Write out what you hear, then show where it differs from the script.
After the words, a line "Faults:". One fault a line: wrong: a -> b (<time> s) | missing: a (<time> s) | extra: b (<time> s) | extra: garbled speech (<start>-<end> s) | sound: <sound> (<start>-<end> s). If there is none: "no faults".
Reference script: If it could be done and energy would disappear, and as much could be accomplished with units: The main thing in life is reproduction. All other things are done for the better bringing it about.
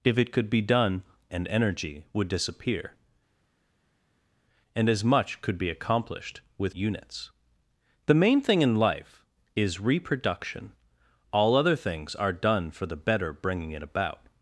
If it could be done and energy would disappear, and as much could be accomplished with units: The main thing in life is reproduction. All other things are done for the better bringing it about.
Faults:
no faults